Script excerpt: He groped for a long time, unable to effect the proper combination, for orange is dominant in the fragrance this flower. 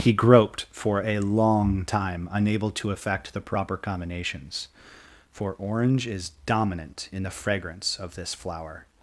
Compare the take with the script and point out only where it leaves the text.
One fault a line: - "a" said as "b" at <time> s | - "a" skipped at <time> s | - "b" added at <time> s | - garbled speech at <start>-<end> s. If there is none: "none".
- "combination" said as "combinations" at 3.8 s
- "of" added at 8.0 s